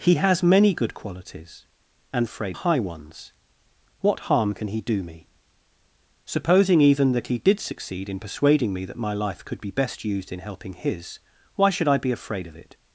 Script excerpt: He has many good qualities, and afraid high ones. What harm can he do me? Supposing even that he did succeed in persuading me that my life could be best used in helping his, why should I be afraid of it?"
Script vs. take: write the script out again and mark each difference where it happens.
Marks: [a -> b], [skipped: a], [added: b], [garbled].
He has many good qualities, and afraid high ones. What harm can he do me? Supposing even that he did succeed in persuading me that my life could be best used in helping his, why should I be afraid of it?"